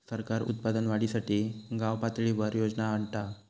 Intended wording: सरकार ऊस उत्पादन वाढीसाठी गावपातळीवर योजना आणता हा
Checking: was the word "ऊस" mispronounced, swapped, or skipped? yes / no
yes